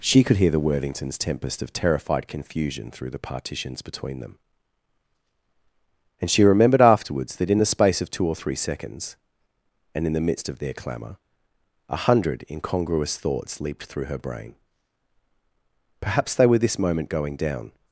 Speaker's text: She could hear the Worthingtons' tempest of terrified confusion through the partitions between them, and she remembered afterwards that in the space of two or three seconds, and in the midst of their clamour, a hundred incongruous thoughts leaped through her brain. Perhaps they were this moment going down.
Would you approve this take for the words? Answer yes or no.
yes